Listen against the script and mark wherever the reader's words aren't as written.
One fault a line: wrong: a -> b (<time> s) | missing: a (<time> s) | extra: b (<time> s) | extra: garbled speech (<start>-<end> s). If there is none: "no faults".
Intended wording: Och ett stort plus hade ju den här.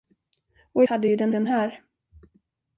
missing: ett stort plus (0.8 s)
extra: den (1.3 s)